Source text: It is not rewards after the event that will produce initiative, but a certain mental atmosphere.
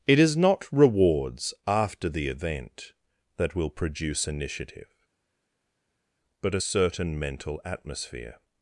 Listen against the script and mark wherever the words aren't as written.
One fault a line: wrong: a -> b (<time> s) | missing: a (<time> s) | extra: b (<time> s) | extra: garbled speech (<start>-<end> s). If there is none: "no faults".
no faults